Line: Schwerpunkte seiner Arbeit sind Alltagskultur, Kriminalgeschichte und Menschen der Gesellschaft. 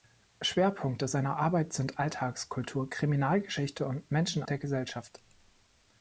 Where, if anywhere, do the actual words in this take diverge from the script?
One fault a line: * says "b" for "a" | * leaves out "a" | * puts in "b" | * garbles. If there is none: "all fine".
all fine